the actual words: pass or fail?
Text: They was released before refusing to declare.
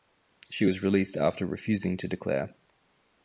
fail